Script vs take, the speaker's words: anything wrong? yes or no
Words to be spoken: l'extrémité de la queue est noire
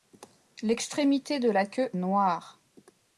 yes